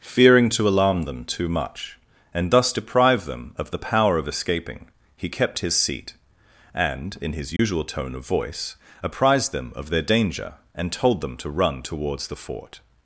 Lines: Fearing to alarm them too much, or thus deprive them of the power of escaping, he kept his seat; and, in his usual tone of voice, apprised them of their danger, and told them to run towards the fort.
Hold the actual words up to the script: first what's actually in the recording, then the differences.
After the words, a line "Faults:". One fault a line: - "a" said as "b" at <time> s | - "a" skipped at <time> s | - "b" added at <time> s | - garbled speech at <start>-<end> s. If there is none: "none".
Fearing to alarm them too much, and thus deprive them of the power of escaping, he kept his seat; and, in his usual tone of voice, apprised them of their danger, and told them to run towards the fort.
Faults:
- "or" said as "and" at 2.3 s